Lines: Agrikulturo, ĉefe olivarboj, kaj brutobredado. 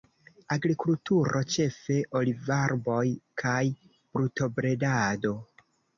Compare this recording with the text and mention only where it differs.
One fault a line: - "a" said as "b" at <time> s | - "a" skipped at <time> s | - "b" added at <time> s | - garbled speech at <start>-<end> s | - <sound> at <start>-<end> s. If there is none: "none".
none